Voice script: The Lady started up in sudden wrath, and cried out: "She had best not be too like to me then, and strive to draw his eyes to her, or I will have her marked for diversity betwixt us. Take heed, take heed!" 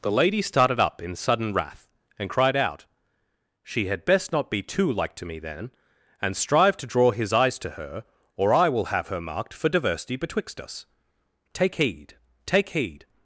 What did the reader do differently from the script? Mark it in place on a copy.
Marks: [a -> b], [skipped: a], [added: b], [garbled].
The Lady started up in sudden wrath, and cried out: "She had best not be too like to me then, and strive to draw his eyes to her, or I will have her marked for diversity betwixt us. Take heed, take heed!"